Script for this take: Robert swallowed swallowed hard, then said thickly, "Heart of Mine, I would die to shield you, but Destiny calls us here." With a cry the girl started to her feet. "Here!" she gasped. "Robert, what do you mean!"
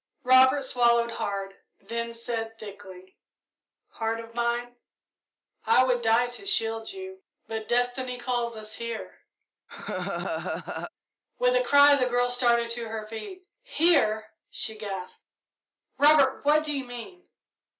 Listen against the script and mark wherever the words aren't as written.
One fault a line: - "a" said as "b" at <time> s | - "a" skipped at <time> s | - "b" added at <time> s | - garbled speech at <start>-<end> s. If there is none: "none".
- "swallowed" skipped at 1.1 s